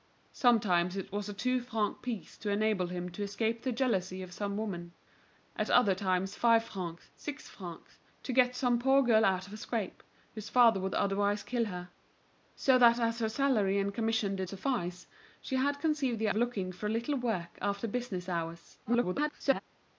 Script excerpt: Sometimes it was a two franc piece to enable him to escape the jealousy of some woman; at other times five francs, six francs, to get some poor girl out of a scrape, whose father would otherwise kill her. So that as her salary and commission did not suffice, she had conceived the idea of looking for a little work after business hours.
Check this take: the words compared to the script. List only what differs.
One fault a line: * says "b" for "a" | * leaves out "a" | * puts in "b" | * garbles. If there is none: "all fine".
* leaves out "not"
* leaves out "idea"
* garbles